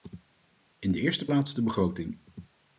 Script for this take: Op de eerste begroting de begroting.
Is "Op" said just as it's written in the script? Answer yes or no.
no